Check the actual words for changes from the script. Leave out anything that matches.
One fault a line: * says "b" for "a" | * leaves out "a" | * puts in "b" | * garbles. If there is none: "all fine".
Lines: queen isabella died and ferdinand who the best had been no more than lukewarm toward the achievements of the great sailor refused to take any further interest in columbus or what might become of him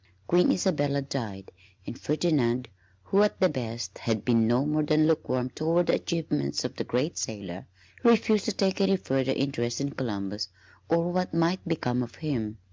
* puts in "at"